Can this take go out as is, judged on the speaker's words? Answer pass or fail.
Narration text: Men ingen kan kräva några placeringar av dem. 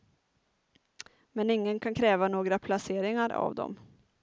pass